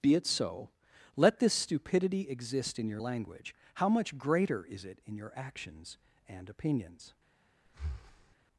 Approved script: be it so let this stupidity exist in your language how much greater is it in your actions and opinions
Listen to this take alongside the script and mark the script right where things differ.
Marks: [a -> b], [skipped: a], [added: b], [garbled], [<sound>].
be it so let this stupidity exist in your language how much greater is it in your actions and opinions [breath]